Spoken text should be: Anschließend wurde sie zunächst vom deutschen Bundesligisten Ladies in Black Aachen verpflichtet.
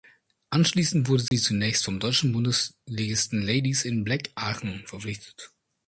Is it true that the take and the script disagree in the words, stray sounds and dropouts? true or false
true